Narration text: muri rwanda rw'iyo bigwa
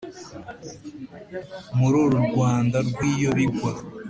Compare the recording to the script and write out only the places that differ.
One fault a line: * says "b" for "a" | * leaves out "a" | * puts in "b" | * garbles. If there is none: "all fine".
* puts in "uru"